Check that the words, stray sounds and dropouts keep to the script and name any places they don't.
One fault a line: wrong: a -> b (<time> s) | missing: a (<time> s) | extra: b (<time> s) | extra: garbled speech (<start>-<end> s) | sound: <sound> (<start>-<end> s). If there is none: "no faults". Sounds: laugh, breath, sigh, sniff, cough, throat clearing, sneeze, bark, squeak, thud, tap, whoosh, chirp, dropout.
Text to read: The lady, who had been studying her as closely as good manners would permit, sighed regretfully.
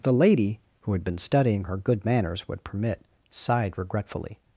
missing: as closely as (1.8 s)